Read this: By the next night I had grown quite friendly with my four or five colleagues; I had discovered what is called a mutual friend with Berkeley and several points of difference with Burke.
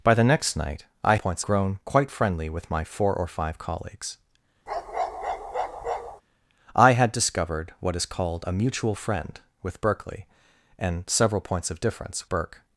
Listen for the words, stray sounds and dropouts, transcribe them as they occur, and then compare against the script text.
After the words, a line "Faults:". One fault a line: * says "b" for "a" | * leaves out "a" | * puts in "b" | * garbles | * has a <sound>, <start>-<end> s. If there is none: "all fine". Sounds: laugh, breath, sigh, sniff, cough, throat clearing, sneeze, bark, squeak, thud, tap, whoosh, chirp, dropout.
By the next night I points grown quite friendly with my four or five colleagues; I had discovered what is called a mutual friend with Berkeley and several points of difference Burke.
Faults:
* says "points" for "had"
* has a bark, 4.7-6.2 s
* leaves out "with"